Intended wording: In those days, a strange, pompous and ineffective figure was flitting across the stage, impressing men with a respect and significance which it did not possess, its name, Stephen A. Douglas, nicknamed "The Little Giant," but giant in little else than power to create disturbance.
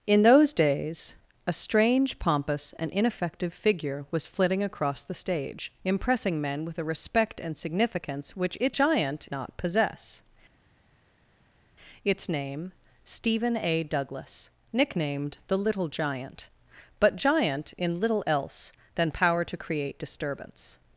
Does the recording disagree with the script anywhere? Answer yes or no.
yes